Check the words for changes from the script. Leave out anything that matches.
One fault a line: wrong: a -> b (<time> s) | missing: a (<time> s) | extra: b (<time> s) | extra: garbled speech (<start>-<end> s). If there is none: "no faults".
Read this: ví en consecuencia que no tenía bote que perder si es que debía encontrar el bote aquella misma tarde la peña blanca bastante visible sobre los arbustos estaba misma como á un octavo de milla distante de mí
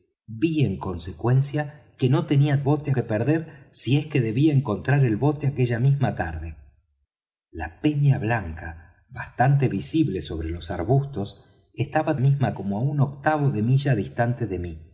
no faults